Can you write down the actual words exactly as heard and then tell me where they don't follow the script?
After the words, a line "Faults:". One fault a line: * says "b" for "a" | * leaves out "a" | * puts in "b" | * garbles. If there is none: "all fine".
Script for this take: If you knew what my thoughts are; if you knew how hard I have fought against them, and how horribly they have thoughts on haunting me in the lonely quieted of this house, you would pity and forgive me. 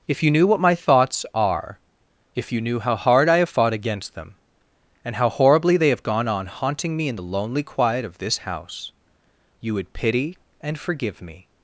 If you knew what my thoughts are; if you knew how hard I have fought against them, and how horribly they have gone on haunting me in the lonely quiet of this house, you would pity and forgive me.
Faults:
* says "gone" for "thoughts"
* says "quiet" for "quieted"